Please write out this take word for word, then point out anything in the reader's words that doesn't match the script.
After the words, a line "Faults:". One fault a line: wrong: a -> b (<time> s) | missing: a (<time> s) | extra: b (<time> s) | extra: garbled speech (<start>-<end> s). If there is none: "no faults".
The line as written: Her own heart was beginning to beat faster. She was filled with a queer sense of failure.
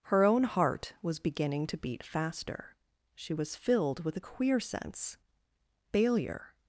Her own heart was beginning to beat faster. She was filled with a queer sense failure.
Faults:
missing: of (5.2 s)